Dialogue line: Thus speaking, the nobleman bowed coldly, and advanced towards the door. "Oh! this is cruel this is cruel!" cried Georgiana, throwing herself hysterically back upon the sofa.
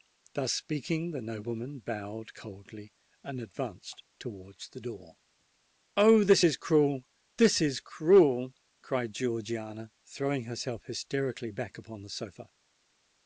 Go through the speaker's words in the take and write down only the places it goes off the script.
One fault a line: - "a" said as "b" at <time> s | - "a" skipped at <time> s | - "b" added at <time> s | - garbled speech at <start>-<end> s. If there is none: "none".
none